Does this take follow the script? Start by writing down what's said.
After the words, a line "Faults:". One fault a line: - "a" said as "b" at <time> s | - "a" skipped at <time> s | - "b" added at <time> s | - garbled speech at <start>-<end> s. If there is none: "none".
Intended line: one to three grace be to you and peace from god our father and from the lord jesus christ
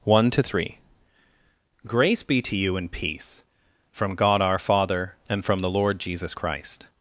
one to three grace be to you and peace from god our father and from the lord jesus christ
Faults:
none